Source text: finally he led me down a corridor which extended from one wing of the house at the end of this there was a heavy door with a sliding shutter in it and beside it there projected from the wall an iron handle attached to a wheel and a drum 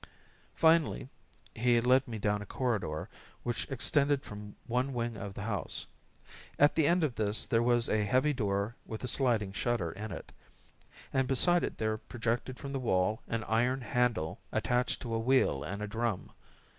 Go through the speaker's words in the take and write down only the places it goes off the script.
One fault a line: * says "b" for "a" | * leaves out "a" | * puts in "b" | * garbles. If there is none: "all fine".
all fine